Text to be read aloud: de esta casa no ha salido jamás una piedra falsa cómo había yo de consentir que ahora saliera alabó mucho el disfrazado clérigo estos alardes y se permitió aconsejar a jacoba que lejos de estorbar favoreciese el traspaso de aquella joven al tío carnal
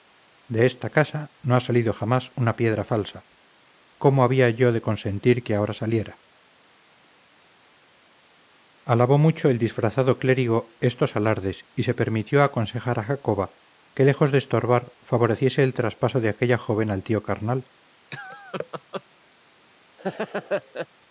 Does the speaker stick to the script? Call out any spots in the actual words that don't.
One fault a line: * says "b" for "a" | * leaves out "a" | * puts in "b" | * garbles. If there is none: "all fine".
all fine